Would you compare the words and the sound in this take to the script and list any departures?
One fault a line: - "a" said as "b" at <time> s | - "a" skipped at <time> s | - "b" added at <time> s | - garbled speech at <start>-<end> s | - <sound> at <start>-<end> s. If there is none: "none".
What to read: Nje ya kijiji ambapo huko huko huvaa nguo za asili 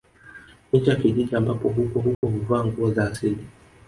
- dropout at 2.1-2.2 s